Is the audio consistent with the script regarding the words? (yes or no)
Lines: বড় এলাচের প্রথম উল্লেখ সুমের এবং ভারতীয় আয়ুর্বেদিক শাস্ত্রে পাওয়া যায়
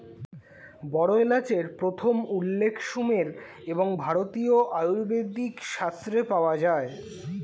yes